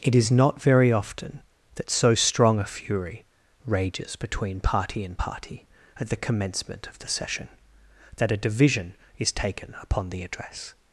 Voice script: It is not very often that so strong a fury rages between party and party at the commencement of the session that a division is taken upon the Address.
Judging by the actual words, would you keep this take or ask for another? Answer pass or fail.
pass